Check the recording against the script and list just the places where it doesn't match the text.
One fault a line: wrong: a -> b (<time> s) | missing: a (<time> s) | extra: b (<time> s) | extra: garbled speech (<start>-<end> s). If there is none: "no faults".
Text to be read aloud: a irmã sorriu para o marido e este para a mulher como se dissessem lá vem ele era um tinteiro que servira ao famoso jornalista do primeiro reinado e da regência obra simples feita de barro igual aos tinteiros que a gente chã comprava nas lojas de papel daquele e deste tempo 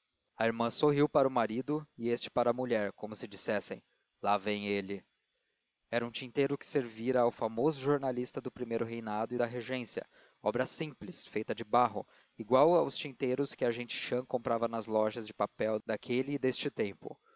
no faults